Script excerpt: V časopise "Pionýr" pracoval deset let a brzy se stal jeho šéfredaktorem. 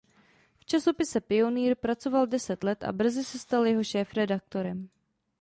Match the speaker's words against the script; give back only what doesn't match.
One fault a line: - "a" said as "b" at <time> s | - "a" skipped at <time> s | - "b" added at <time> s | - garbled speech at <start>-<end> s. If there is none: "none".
none